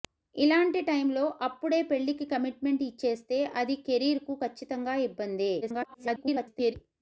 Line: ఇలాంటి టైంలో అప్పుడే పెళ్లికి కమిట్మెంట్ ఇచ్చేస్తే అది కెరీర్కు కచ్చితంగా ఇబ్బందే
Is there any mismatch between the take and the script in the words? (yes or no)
yes